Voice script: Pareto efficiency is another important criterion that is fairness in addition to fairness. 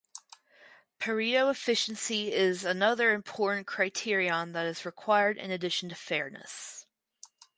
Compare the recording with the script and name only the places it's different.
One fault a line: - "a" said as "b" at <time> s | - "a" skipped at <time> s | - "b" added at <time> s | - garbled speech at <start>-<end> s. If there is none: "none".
- "fairness" said as "required" at 4.8 s